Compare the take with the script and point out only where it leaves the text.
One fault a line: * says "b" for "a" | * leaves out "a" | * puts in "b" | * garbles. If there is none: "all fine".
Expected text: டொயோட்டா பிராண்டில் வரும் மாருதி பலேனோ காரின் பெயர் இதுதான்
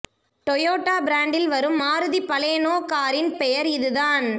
all fine